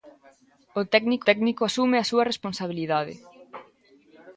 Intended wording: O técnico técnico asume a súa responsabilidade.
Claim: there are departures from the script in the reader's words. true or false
false